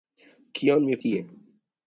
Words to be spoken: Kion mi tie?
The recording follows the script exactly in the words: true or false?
true